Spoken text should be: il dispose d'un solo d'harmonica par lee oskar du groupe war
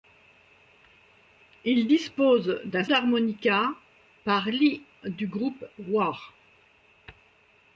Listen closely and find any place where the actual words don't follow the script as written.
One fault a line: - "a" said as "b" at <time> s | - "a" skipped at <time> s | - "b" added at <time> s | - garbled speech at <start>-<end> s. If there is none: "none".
- "solo" skipped at 2.8 s
- "oskar" skipped at 4.8 s